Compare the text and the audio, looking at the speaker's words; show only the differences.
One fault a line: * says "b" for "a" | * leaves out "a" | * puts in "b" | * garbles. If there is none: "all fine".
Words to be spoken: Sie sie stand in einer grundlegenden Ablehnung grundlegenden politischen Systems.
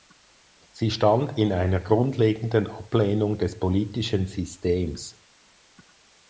* leaves out "sie"
* says "des" for "grundlegenden"